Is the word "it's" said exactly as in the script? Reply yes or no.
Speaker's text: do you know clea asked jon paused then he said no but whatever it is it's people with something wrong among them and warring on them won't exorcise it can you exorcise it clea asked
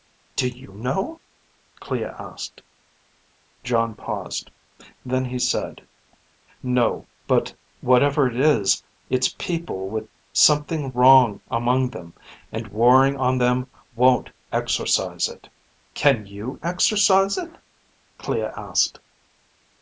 yes